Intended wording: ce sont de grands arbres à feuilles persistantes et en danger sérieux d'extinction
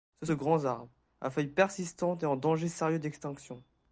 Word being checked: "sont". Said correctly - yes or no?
no